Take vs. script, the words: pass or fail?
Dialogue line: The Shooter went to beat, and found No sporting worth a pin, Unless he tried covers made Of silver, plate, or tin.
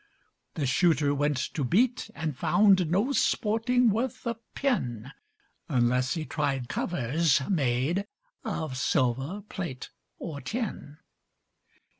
pass